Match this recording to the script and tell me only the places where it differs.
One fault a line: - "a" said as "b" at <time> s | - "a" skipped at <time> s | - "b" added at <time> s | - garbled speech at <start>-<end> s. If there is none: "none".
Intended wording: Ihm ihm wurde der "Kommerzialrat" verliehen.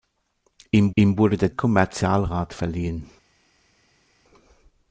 none